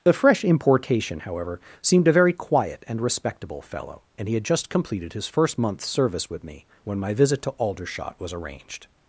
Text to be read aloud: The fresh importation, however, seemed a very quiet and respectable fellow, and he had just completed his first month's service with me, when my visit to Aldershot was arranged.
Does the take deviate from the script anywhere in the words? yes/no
no